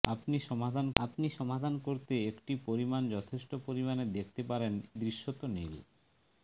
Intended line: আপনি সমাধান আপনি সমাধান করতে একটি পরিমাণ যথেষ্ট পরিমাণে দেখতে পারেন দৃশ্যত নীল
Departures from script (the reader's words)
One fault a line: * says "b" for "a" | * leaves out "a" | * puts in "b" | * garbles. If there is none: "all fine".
all fine